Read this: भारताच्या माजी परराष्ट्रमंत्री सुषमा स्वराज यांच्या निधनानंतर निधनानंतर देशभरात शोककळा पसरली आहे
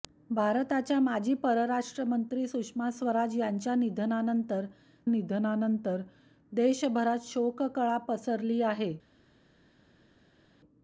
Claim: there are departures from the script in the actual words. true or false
false